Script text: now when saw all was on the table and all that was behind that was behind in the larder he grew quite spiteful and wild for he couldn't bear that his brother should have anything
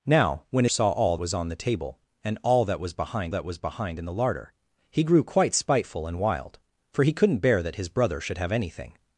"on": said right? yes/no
yes